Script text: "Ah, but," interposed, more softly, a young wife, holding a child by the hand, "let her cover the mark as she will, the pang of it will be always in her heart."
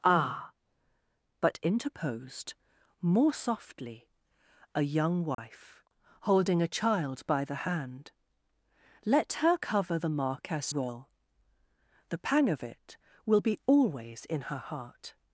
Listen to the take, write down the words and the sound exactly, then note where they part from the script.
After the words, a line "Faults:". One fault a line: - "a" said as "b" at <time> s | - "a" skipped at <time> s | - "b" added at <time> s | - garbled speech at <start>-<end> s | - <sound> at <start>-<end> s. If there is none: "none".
"Ah, but," interposed, more softly, a young wife, holding a child by the hand, "let her cover the mark as will, the pang of it will be always in her heart."
Faults:
- dropout at 5.3-5.4 s
- "she" skipped at 10.7 s